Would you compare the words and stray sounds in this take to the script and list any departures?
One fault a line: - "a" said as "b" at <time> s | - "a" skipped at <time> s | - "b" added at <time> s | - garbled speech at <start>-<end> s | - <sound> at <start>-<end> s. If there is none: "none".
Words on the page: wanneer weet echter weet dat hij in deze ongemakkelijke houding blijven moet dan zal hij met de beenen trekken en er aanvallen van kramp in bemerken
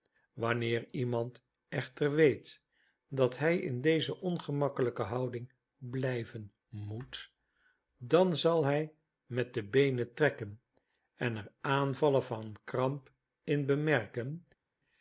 - "weet" said as "iemand" at 0.9 s